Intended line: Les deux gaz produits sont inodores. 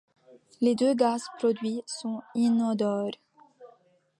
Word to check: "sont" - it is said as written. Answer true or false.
true